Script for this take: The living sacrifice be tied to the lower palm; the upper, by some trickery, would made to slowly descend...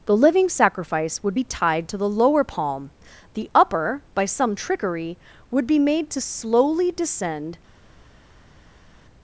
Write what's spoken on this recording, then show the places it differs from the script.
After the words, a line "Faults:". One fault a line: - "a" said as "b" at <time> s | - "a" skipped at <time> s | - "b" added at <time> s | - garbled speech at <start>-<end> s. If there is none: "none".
The living sacrifice would be tied to the lower palm; the upper, by some trickery, would be made to slowly descend...
Faults:
- "would" added at 1.2 s
- "be" added at 5.6 s